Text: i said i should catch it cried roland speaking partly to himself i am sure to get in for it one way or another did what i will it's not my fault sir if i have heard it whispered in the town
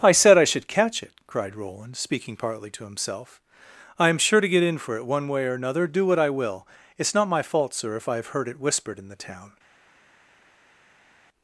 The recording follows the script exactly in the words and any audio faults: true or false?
false